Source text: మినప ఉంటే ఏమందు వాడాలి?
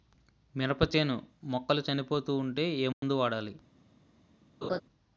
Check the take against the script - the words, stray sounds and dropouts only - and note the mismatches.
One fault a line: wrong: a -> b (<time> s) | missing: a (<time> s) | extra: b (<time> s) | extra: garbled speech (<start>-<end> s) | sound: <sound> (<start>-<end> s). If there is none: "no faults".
extra: చేను మొక్కలు చనిపోతూ (1.0 s)
sound: dropout (2.9-3.0 s)
sound: laugh (4.6-4.8 s)